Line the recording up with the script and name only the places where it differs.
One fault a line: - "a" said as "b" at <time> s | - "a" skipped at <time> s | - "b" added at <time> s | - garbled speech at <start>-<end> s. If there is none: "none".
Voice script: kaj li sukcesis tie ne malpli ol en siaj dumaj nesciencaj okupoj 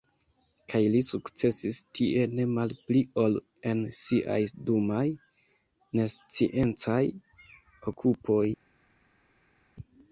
none